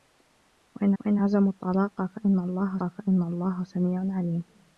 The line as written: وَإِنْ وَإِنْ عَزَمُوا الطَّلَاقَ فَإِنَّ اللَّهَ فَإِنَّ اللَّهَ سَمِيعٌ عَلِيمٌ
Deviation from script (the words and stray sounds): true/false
false